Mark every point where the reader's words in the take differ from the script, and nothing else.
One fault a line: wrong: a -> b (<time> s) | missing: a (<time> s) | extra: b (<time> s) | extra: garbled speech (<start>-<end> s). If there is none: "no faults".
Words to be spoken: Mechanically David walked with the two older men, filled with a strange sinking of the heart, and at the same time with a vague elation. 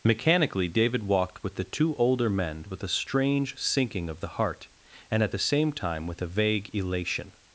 missing: filled (2.6 s)